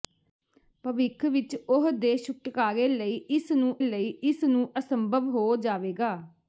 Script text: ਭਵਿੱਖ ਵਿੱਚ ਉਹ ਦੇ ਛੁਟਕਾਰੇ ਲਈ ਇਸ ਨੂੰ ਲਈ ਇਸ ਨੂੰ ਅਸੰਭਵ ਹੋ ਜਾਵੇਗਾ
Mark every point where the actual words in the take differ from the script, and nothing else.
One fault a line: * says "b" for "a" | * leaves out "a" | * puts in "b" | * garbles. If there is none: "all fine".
all fine